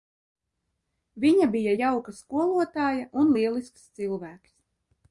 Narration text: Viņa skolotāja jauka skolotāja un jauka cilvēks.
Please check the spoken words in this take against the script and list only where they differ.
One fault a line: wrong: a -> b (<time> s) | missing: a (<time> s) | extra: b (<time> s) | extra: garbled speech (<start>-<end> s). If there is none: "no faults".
wrong: skolotāja -> bija (1.6 s)
wrong: jauka -> lielisks (3.4 s)